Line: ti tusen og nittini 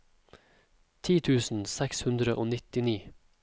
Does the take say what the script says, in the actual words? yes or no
no